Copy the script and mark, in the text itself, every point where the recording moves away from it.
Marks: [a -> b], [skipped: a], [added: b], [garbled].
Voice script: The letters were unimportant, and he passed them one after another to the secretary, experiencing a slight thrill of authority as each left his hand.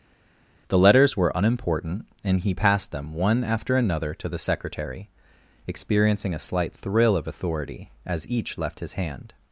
The letters were unimportant, and he passed them one after another to the secretary, experiencing a slight thrill of authority as each left his hand.